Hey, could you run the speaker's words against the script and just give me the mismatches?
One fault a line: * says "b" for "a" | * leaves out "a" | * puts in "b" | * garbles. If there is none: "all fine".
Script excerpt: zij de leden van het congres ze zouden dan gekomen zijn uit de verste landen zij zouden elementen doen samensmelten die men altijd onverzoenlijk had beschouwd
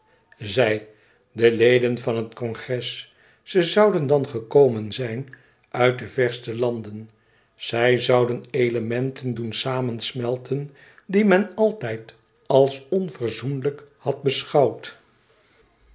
* puts in "als"